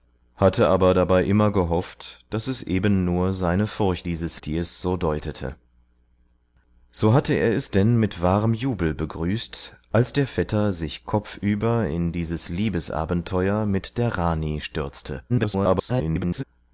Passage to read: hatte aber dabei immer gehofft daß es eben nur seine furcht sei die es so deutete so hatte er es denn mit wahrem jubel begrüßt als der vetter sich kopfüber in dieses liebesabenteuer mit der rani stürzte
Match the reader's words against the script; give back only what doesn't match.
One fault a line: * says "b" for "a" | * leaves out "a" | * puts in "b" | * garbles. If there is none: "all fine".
* says "dieses" for "sei"
* garbles